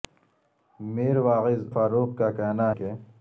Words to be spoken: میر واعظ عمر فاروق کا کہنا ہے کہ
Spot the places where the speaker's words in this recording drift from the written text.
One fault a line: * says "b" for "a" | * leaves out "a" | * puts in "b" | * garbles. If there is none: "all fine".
* leaves out "عمر"
* leaves out "ہے"